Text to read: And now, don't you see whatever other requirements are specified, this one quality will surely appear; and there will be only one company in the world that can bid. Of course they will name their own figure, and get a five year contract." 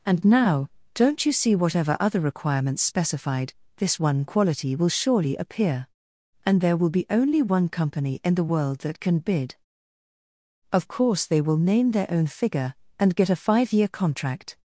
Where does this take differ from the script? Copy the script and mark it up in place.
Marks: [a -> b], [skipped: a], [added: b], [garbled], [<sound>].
And now, don't you see whatever other requirements [skipped: are] specified, this one quality will surely appear; and there will be only one company in the world that can bid. Of course they will name their own figure, and get a five year contract."